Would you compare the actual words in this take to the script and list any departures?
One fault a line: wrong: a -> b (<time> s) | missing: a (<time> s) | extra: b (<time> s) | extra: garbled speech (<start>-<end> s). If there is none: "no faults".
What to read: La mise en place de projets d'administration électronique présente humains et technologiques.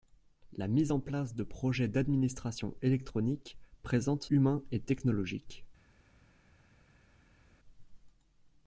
no faults